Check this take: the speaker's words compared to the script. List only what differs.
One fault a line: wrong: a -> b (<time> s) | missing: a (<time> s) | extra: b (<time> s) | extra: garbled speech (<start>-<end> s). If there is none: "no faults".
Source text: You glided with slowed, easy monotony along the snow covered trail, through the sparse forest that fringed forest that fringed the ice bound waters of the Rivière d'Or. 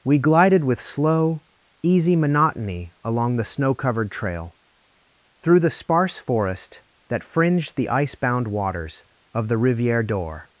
wrong: You -> We (0.0 s)
wrong: slowed -> slow (0.8 s)
missing: forest that fringed (7.8 s)